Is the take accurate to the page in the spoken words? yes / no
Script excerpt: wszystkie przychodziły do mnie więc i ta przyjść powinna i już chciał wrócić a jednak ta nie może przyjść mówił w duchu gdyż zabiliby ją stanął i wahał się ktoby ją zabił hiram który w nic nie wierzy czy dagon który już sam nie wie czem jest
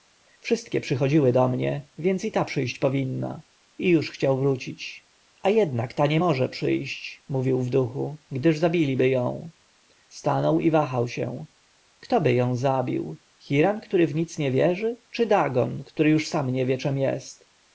yes